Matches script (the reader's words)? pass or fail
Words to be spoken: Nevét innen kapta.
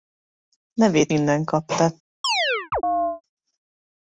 pass